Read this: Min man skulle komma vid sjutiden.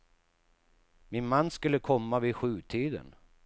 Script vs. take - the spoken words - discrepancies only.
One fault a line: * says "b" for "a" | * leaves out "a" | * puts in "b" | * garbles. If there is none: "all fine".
all fine